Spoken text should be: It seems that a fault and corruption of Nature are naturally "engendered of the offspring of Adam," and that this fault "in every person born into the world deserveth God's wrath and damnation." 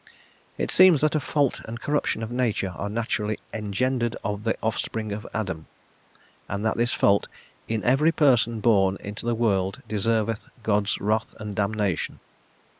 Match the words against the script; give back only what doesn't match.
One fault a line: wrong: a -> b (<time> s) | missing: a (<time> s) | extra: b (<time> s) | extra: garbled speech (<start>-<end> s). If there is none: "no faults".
no faults